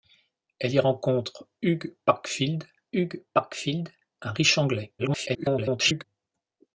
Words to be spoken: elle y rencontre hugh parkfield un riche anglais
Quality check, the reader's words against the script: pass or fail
fail